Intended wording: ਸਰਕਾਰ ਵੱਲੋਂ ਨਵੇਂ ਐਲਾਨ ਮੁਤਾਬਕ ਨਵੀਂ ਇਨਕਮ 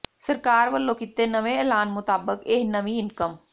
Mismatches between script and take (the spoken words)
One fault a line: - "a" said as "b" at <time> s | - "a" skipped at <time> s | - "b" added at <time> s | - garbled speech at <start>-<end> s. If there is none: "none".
- "ਕੀਤੇ" added at 0.9 s
- "ਇਹ" added at 2.5 s